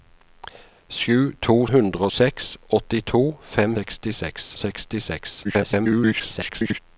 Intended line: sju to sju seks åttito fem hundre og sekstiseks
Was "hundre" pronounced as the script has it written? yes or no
no